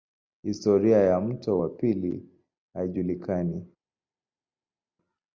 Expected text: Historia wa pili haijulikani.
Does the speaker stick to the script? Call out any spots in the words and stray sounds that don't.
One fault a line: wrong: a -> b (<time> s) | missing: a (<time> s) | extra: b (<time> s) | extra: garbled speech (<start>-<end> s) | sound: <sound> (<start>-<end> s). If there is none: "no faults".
extra: ya mto (1.0 s)